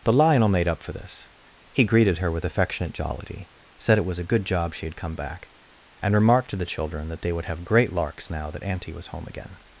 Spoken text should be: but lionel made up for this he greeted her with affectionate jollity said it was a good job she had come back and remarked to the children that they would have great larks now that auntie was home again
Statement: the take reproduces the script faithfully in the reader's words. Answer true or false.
false